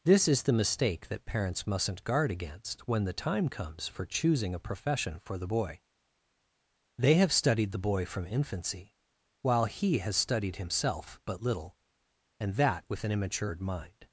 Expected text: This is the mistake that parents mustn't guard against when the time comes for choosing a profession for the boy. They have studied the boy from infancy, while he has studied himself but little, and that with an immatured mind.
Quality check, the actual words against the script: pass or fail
pass